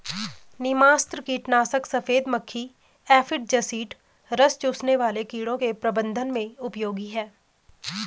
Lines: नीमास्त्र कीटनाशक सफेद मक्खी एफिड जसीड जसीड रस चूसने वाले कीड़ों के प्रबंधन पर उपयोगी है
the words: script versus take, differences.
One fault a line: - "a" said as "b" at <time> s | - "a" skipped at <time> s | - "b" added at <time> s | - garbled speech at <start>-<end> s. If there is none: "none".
- "जसीड" skipped at 3.9 s
- "पर" said as "में" at 6.3 s